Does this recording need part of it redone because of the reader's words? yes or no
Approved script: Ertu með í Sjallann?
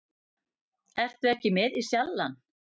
yes